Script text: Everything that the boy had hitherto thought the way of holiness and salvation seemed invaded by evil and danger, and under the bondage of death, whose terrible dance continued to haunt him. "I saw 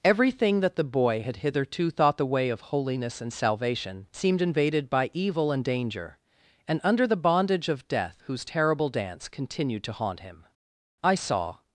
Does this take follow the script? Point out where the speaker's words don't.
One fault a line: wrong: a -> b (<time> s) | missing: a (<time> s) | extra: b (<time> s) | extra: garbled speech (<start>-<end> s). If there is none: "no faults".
no faults